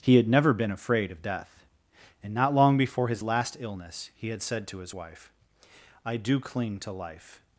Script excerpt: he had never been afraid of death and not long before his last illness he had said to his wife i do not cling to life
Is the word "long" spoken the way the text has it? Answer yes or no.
yes